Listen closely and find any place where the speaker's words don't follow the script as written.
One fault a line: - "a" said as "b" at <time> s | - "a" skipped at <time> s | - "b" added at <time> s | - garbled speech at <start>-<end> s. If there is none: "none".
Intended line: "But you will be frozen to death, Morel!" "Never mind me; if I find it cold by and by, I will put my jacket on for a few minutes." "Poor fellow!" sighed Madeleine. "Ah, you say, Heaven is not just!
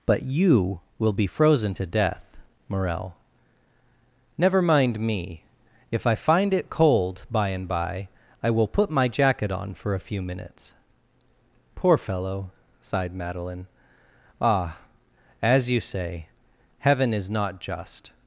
- "as" added at 15.4 s